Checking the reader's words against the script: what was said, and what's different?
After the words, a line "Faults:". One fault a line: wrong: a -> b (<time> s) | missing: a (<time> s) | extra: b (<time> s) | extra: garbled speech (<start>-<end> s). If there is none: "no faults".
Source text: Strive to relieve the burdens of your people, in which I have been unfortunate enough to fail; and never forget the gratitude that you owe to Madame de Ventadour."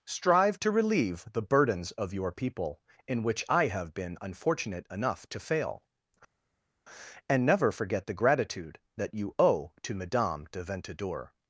Strive to relieve the burdens of your people, in which I have been unfortunate enough to fail; and never forget the gratitude that you owe to Madame de Ventadour."
Faults:
no faults